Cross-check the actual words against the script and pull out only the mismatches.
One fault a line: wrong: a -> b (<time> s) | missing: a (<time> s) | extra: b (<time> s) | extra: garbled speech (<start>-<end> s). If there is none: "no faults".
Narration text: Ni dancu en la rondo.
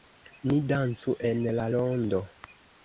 no faults